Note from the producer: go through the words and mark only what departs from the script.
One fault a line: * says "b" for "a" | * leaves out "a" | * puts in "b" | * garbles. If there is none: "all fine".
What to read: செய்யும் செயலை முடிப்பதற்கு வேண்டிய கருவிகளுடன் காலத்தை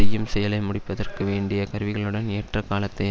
* puts in "ஏற்ற"